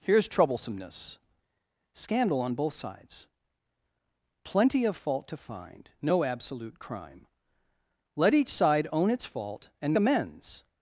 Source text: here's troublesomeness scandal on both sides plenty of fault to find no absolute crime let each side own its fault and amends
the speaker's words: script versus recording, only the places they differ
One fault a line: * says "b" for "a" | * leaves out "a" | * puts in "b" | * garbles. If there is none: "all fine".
all fine